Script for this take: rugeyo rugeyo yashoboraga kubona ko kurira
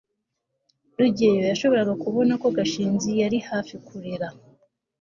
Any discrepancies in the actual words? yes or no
yes